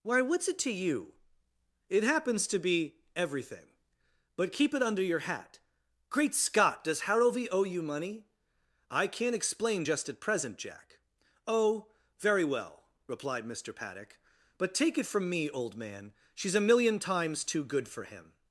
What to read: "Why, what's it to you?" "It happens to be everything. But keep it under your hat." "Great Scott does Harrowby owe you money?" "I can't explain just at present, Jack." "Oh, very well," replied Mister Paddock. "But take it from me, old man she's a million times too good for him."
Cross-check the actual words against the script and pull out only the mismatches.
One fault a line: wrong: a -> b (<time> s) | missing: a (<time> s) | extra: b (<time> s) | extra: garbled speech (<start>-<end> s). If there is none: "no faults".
no faults